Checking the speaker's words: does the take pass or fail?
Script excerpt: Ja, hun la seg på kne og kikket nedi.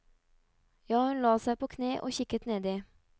pass